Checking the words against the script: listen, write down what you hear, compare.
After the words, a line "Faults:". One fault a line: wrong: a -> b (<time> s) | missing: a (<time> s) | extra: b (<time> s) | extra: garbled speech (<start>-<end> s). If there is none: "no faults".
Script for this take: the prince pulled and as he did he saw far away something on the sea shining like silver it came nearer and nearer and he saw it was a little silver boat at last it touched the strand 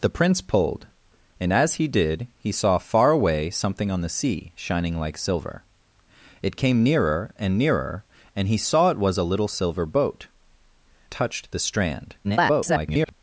the prince pulled and as he did he saw far away something on the sea shining like silver it came nearer and nearer and he saw it was a little silver boat touched the strand [garbled]
Faults:
missing: at last it (10.3 s)
extra: garbled speech (12.2-13.1 s)